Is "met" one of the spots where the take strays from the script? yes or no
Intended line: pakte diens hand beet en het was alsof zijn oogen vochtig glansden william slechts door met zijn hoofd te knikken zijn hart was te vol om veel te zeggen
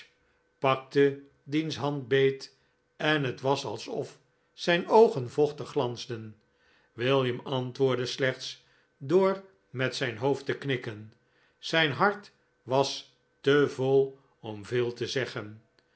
no